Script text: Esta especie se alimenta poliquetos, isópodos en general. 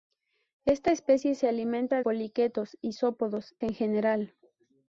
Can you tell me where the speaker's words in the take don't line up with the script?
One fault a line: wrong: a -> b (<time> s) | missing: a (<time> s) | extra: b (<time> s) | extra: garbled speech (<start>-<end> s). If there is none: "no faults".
no faults